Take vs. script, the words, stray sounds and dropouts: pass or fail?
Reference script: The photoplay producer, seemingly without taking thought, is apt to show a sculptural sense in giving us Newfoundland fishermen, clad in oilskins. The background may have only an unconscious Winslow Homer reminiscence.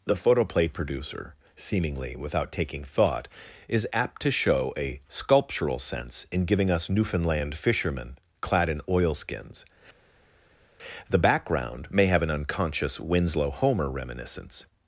fail